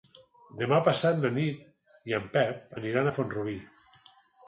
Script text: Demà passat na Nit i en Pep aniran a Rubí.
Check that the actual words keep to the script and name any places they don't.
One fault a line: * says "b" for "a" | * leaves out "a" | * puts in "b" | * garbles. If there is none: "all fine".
* puts in "Font"